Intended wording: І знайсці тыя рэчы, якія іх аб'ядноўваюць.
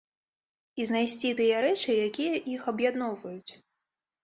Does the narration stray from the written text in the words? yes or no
no